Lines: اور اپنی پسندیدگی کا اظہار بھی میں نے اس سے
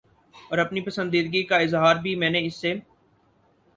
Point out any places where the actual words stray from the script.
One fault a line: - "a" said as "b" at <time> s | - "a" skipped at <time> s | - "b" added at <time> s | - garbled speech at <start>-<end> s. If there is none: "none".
none